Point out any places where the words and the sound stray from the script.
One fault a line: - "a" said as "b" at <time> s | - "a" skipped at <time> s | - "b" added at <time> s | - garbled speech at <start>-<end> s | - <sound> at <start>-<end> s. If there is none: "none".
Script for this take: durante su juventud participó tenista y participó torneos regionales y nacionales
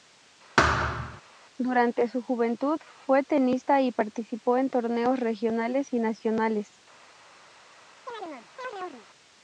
- thud at 0.6-1.2 s
- "participó" said as "fue" at 3.1 s
- "en" added at 4.6 s
- chirp at 8.1-9.1 s